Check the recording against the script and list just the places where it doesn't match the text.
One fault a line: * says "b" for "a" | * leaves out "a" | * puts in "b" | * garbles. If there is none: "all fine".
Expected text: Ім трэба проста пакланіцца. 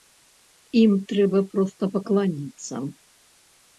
all fine